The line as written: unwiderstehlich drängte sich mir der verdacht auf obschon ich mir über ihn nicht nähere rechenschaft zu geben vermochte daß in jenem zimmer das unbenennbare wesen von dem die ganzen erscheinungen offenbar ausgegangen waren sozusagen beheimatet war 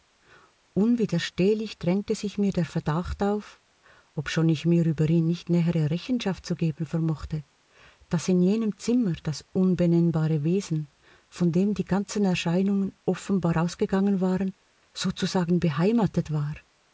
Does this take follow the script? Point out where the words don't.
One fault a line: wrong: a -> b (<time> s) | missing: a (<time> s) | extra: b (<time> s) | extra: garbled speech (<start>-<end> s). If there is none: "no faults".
no faults